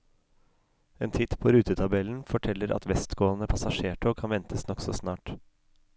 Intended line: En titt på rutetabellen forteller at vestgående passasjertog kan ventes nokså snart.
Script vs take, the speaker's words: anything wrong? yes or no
no